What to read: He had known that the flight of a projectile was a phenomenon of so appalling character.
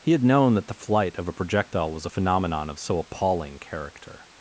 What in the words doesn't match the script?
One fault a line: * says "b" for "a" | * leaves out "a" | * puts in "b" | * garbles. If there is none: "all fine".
all fine